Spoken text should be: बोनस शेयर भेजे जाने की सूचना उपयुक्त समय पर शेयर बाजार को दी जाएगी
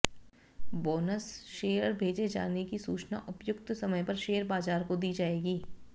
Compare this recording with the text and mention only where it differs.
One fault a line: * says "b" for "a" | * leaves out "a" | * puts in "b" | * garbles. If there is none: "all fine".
all fine